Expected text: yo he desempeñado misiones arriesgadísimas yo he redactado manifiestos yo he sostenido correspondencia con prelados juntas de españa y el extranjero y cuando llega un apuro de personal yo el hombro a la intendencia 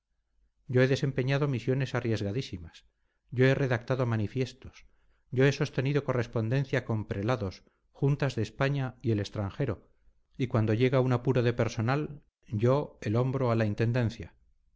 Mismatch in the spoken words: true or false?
false